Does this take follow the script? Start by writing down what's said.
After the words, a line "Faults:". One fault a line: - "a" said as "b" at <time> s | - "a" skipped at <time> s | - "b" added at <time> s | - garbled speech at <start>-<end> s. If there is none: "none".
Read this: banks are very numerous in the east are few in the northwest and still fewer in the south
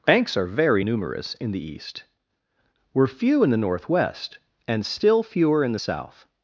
banks are very numerous in the east were few in the northwest and still fewer in the south
Faults:
- "are" said as "were" at 2.9 s